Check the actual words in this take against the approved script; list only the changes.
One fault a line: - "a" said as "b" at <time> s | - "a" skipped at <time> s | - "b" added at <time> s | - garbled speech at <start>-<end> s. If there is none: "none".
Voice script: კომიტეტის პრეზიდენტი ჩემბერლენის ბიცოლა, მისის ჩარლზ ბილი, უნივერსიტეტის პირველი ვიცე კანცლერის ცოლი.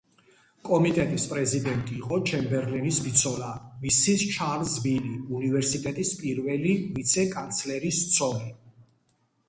- "იყო" added at 2.0 s